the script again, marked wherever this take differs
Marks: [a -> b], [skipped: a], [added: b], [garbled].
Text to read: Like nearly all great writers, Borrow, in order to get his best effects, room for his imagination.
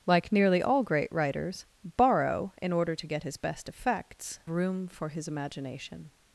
Like nearly all great writers, Borrow, in order to get his best effects, room for his imagination.